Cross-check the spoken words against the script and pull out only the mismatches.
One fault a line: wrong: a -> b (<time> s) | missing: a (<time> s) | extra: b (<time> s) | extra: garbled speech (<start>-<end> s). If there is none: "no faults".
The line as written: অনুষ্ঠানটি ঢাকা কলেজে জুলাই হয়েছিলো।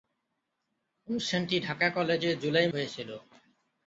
no faults